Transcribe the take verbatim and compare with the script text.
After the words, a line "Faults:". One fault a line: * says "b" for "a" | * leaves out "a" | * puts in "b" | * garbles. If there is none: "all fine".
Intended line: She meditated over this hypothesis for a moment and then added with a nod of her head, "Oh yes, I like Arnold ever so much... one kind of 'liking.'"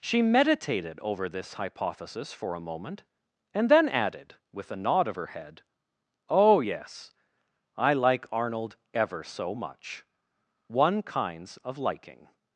She meditated over this hypothesis for a moment and then added with a nod of her head, "Oh yes, I like Arnold ever so much... one kinds of 'liking.'"
Faults:
* says "kinds" for "kind"